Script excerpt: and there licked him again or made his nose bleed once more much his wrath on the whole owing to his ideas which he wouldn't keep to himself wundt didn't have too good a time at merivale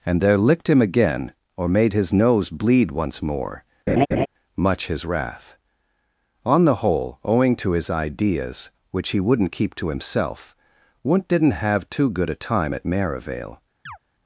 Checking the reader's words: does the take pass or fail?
pass